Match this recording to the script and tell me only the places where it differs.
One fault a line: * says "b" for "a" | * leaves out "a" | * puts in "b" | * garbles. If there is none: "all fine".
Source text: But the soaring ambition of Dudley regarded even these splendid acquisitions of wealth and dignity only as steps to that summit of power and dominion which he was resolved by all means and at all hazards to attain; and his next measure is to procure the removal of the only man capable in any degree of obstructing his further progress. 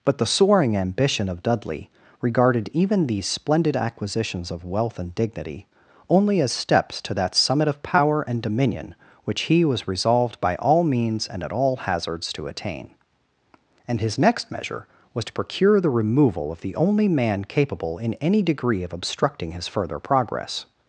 * says "was" for "is"